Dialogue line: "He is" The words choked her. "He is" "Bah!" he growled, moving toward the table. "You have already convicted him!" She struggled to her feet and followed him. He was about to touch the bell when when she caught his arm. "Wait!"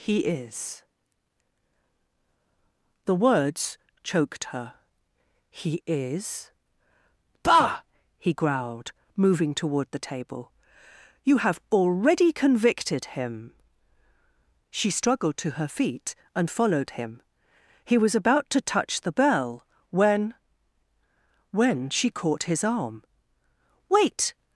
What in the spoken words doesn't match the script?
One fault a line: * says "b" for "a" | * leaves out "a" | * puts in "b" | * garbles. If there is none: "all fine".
all fine